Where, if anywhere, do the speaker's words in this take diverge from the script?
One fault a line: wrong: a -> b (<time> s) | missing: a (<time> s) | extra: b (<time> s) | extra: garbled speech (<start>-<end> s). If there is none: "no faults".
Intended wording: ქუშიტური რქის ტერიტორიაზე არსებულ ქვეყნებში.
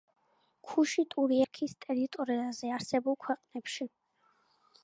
no faults